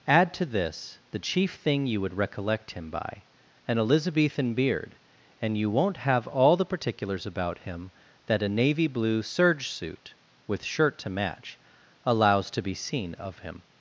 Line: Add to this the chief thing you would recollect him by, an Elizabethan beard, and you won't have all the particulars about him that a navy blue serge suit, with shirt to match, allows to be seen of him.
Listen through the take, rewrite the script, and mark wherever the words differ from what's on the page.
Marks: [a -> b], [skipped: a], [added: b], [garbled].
Add to this the chief thing you would recollect him by, an Elizabethan beard, and you won't have all the particulars about him that a navy blue serge suit, with shirt to match, allows to be seen of him.